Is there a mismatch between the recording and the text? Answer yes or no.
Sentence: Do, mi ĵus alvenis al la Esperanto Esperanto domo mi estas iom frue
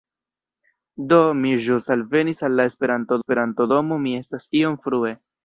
no